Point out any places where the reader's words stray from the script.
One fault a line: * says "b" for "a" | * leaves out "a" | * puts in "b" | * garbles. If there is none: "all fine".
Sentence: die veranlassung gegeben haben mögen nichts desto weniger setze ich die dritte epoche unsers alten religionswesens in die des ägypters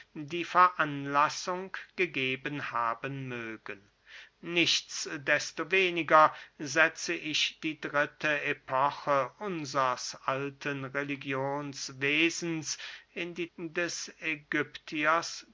all fine